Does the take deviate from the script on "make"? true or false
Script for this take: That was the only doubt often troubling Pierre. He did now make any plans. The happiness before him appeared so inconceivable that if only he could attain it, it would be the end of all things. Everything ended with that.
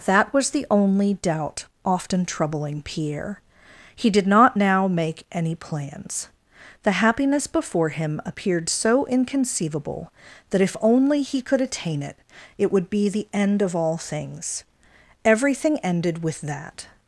false